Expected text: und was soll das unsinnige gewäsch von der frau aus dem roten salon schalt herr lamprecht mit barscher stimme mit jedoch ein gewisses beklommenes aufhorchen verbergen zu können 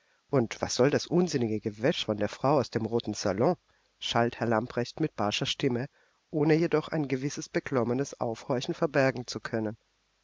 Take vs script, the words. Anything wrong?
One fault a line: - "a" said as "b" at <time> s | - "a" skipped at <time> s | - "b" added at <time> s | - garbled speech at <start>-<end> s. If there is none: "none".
- "mit" said as "ohne" at 6.3 s